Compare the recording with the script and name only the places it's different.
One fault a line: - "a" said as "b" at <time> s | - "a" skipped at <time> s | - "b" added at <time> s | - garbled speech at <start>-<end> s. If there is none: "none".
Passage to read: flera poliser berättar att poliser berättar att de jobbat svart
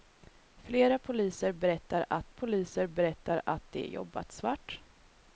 none